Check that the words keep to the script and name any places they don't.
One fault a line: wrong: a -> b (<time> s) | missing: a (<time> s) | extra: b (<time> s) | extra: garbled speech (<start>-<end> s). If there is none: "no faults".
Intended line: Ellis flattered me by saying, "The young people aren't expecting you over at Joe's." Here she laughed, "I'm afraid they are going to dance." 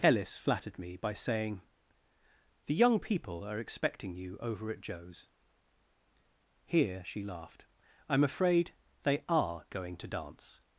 wrong: aren't -> are (3.4 s)